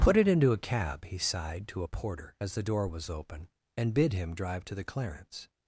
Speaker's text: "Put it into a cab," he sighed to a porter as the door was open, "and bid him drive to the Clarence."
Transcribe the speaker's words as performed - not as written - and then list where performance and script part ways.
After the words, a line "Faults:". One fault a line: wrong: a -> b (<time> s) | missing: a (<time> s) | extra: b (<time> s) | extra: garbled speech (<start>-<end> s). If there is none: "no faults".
"Put it into a cab," he sighed to a porter as the door was open, "and bid him drive to the Clarence."
Faults:
no faults